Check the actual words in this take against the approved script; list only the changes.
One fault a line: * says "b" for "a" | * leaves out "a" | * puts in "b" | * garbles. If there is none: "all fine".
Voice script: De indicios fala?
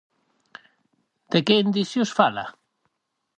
* puts in "que"